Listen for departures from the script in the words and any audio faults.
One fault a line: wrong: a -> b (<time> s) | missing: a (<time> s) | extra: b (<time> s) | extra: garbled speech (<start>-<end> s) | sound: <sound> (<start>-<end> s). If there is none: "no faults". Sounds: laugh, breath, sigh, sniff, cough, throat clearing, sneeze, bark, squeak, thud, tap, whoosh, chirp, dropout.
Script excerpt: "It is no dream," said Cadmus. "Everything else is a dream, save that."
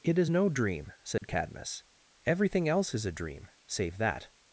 sound: dropout (1.2-1.2 s)